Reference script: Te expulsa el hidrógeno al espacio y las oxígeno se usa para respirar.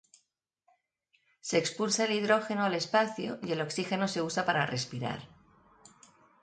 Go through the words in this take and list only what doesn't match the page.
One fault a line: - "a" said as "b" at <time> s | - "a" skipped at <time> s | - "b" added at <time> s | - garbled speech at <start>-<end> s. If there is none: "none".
- "Te" said as "Se" at 1.4 s
- "las" said as "el" at 3.5 s